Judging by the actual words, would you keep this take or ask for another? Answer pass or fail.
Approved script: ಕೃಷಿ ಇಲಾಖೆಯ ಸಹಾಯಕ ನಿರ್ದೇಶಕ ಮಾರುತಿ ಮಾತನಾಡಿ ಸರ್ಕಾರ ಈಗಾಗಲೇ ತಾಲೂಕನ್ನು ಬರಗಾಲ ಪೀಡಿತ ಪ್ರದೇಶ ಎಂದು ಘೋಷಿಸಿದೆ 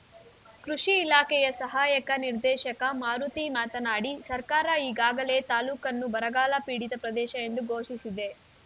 pass